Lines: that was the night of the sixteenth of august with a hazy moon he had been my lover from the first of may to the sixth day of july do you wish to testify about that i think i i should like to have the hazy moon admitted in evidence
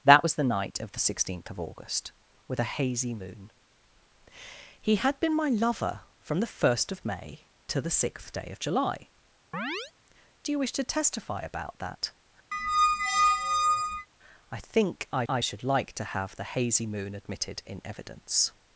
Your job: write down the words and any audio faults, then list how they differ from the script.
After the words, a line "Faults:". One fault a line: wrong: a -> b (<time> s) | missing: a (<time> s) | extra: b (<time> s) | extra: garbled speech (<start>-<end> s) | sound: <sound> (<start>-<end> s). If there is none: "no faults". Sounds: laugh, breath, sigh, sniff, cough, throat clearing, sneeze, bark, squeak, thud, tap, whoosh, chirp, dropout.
that was the night of the sixteenth of august with a hazy moon he had been my lover from the first of may to the sixth day of july do you wish to testify about that i think i i should like to have the hazy moon admitted in evidence
Faults:
sound: chirp (9.5-9.9 s)
sound: squeak (12.5-14.1 s)